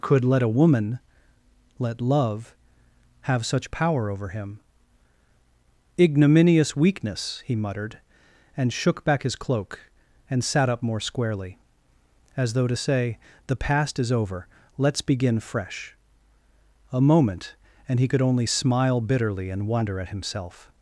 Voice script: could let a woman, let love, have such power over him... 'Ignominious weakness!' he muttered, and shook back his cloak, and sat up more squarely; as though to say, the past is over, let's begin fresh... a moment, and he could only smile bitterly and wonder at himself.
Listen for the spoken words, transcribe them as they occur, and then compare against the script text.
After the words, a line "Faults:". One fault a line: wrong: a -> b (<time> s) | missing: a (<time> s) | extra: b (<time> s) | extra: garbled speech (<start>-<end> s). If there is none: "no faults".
could let a woman, let love, have such power over him... 'Ignominious weakness!' he muttered, and shook back his cloak, and sat up more squarely; as though to say, the past is over, let's begin fresh... a moment, and he could only smile bitterly and wonder at himself.
Faults:
no faults